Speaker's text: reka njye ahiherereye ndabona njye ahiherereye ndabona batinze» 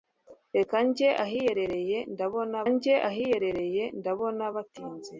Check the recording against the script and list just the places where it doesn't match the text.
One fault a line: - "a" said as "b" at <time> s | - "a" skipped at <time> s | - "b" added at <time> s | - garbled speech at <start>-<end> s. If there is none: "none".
none